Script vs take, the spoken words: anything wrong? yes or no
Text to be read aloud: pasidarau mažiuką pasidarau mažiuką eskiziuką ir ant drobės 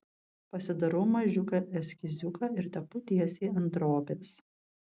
yes